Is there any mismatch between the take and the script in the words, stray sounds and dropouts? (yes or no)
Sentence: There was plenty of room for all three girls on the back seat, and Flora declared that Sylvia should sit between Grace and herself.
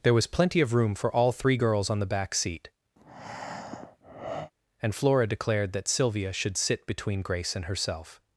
yes